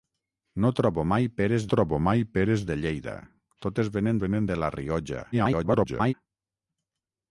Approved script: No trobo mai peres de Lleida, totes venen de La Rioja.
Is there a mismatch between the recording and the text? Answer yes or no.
yes